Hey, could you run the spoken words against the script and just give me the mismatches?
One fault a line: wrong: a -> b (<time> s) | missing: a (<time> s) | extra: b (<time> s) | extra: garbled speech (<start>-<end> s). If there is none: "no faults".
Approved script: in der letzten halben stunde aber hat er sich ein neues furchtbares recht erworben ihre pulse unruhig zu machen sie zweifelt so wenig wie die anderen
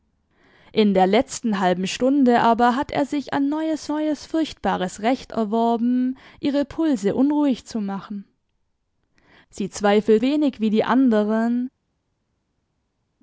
extra: neues (3.9 s)
missing: so (10.2 s)